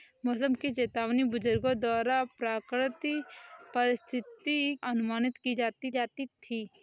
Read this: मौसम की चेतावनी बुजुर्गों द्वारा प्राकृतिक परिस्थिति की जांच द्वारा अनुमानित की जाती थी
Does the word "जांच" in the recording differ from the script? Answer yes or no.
yes